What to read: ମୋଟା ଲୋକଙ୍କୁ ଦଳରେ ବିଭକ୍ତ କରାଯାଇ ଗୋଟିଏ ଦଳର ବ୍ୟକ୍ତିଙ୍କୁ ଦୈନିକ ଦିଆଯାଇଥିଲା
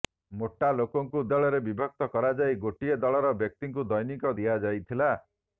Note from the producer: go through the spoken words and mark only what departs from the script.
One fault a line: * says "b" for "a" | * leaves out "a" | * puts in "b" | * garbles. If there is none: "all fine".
all fine